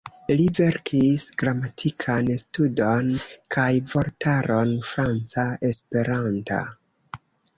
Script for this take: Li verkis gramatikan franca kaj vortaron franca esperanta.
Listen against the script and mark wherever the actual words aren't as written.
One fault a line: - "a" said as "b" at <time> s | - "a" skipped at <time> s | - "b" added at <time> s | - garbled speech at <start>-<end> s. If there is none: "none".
- "franca" said as "studon" at 2.4 s